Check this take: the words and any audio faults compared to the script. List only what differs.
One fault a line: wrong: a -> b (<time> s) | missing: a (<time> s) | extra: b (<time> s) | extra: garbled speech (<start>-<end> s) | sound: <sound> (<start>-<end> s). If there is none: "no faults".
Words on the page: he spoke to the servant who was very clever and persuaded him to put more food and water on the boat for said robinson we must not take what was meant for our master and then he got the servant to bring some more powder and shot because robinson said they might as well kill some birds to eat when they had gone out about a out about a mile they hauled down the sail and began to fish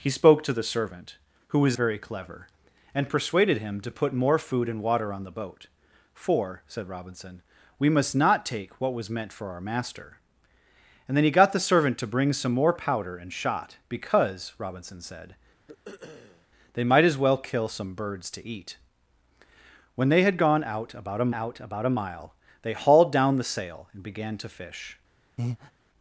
sound: throat clearing (15.7-16.5 s)
sound: breath (25.4-25.7 s)